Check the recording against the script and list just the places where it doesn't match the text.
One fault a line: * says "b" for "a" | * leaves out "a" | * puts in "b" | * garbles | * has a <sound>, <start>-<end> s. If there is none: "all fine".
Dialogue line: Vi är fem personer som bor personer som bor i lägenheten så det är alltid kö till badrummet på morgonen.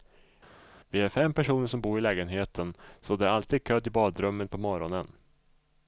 * leaves out "personer som bor"